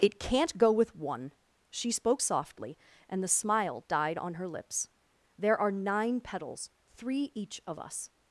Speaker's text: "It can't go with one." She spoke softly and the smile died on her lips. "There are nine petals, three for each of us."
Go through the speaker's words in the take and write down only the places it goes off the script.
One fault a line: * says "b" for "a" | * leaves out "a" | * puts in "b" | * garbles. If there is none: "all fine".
* leaves out "for"